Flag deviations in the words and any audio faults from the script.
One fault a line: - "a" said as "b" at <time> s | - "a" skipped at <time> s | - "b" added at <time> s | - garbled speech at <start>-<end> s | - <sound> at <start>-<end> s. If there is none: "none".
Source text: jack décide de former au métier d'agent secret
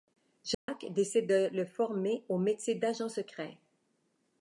- dropout at 0.5-0.7 s
- "le" added at 1.5 s